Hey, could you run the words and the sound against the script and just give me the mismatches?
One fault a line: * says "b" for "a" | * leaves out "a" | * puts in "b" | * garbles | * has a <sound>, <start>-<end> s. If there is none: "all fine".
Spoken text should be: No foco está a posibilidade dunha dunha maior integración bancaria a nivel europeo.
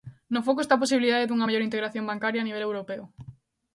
* leaves out "dunha"